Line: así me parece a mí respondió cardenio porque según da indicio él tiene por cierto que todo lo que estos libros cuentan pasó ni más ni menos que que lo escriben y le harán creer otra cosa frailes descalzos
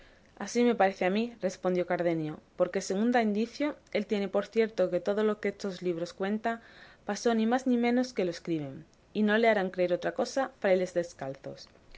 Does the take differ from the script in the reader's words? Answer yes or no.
yes